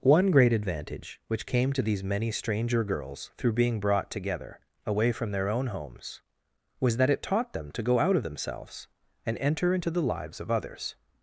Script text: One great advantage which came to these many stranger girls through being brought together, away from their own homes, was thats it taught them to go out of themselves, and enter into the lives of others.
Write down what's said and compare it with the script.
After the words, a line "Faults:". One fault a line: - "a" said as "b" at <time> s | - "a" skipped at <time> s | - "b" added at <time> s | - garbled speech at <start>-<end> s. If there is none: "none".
One great advantage which came to these many stranger girls through being brought together, away from their own homes, was that it taught them to go out of themselves, and enter into the lives of others.
Faults:
- "thats" said as "that" at 7.0 s